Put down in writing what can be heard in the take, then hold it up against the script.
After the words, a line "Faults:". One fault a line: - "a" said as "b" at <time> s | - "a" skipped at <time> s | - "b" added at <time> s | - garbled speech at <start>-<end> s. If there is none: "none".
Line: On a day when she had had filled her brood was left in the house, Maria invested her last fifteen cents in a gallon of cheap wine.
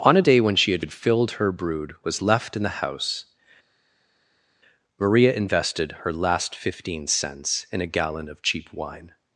On a day when she had had filled her brood was left in the house, Maria invested her last fifteen cents in a gallon of cheap wine.
Faults:
none